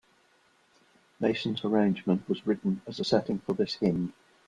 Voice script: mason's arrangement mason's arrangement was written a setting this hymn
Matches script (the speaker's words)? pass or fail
fail